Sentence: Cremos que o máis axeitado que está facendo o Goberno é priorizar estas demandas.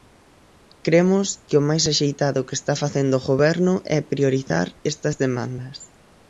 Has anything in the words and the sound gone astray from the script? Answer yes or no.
no